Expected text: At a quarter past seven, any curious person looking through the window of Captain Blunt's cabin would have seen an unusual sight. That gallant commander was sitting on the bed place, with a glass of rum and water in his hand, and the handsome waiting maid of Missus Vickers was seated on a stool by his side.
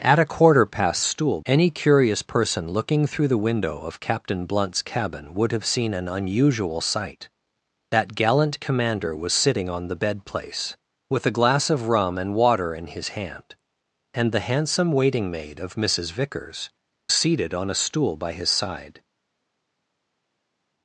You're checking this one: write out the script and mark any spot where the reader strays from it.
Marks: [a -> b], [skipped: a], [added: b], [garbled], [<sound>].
At a quarter past [seven, -> stool] any curious person looking through the window of Captain Blunt's cabin would have seen an unusual sight. That gallant commander was sitting on the bed place, with a glass of rum and water in his hand, and the handsome waiting maid of Missus Vickers [skipped: was] seated on a stool by his side.